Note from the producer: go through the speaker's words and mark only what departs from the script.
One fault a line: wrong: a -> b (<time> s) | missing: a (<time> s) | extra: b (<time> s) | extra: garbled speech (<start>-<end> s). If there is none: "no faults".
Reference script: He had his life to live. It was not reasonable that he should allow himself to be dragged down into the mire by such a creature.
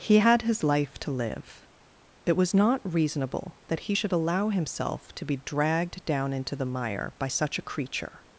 no faults